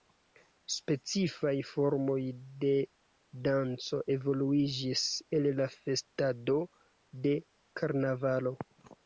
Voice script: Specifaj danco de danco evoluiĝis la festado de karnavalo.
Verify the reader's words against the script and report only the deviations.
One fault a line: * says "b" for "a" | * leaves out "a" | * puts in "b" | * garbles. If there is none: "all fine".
* says "formoj" for "danco"
* puts in "el"